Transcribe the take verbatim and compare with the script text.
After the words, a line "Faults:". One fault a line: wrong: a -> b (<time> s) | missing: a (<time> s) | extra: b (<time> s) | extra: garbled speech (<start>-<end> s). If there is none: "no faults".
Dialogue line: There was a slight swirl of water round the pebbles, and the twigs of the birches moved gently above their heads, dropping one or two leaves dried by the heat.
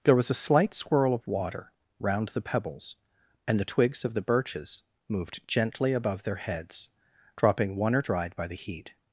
There was a slight swirl of water round the pebbles, and the twigs of the birches moved gently above their heads, dropping one or dried by the heat.
Faults:
missing: two leaves (8.0 s)